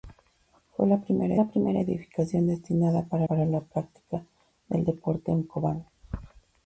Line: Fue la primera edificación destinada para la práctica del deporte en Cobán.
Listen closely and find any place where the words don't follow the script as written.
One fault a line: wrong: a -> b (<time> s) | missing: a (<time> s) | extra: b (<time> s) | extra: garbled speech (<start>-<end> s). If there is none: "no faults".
extra: la primera (1.3 s)
extra: para (3.3 s)